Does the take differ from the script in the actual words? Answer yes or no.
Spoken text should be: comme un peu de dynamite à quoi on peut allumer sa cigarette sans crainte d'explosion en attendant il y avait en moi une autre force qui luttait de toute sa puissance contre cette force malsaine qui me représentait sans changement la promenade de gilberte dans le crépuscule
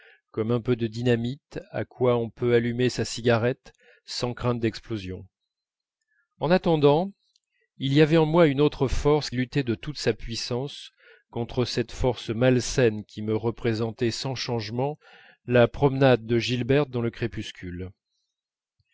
yes